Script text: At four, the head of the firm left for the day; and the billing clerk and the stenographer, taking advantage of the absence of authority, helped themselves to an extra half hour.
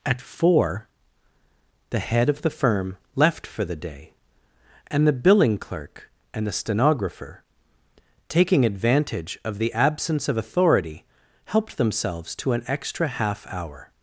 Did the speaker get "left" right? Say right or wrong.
right